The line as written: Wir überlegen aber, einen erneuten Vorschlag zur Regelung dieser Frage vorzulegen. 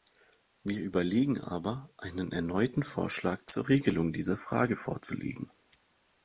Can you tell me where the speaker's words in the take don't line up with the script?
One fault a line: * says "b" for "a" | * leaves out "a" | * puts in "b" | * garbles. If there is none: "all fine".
all fine